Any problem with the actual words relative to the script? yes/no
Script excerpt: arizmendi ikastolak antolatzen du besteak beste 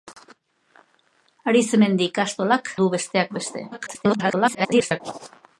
yes